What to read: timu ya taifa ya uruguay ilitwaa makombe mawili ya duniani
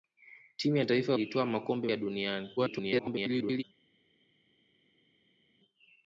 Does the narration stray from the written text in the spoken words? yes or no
yes